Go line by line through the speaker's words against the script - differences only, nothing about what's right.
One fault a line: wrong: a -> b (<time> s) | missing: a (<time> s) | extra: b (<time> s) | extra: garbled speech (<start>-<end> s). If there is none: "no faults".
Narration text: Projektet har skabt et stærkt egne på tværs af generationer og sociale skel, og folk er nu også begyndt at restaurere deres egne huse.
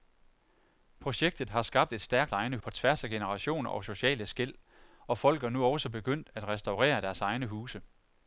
no faults